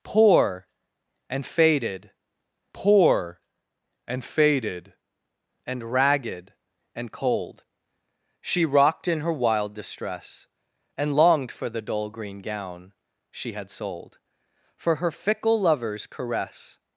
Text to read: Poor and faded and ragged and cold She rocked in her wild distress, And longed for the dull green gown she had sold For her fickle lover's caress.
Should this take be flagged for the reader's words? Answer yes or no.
yes